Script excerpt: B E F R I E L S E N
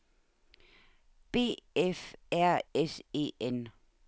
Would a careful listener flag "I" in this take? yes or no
yes